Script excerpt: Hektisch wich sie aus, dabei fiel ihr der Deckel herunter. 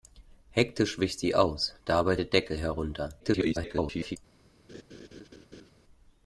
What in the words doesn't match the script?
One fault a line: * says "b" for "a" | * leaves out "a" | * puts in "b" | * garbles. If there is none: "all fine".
* leaves out "fiel ihr"
* garbles